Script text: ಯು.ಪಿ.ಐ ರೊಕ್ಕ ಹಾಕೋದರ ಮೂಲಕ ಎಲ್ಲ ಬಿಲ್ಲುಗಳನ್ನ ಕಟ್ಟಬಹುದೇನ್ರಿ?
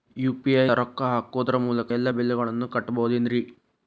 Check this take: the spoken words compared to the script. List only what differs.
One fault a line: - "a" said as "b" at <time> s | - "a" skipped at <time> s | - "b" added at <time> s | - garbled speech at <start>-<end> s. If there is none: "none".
none